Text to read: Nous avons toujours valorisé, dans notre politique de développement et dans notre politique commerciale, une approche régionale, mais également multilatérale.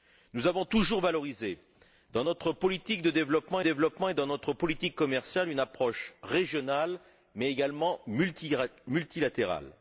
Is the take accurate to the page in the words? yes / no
no